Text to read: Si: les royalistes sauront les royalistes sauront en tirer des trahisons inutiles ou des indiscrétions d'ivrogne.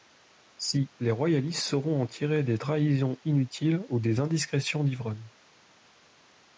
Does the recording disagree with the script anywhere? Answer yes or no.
yes